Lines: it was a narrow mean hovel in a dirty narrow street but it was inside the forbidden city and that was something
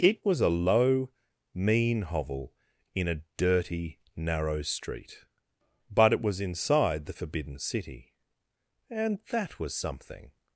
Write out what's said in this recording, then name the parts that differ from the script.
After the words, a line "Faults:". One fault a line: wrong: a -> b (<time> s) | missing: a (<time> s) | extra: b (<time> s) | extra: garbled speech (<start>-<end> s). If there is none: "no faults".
it was a low mean hovel in a dirty narrow street but it was inside the forbidden city and that was something
Faults:
wrong: narrow -> low (0.5 s)